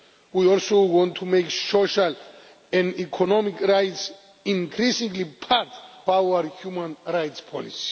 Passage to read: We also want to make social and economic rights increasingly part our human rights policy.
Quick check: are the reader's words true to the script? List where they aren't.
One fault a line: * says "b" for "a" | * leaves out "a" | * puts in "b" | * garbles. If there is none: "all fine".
all fine